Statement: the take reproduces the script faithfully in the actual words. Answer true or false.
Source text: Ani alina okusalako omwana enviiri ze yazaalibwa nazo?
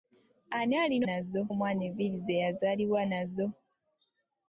false